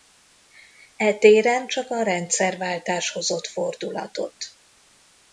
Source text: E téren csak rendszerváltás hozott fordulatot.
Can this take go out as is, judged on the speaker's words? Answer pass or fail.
fail